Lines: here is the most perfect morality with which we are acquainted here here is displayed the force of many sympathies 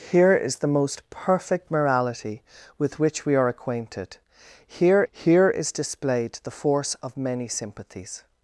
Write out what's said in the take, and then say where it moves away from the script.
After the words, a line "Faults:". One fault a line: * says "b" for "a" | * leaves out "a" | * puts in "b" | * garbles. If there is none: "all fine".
here is the most perfect morality with which we are acquainted here here is displayed the force of many sympathies
Faults:
all fine